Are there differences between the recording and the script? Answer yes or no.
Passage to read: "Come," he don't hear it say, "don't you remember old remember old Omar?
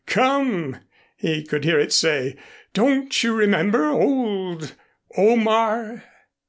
yes